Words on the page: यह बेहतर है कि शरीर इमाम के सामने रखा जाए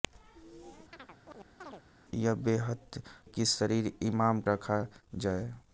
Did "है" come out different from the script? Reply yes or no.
yes